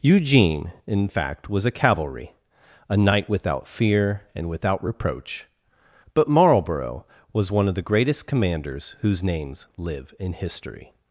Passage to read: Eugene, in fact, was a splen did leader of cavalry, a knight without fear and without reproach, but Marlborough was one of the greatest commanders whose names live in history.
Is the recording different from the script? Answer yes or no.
yes